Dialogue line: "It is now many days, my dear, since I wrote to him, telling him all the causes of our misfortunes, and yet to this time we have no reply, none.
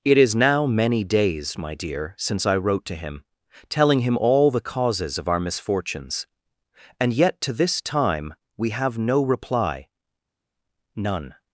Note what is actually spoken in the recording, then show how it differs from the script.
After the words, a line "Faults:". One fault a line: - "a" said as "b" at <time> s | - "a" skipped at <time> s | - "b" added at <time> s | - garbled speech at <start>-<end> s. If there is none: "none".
"It is now many days, my dear, since I wrote to him, telling him all the causes of our misfortunes, and yet to this time we have no reply, none.
Faults:
none